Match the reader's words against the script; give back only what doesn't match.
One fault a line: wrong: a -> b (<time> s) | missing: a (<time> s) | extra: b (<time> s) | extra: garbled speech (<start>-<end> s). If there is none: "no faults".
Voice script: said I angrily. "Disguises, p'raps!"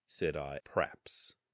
missing: angrily Disguises (0.6 s)